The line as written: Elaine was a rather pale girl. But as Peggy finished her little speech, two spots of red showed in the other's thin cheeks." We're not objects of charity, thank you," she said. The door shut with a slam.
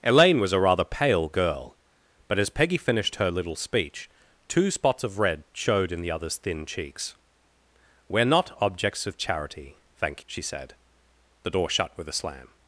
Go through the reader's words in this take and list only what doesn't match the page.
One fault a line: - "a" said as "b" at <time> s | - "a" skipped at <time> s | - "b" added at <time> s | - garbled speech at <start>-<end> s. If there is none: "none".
- "you" skipped at 10.2 s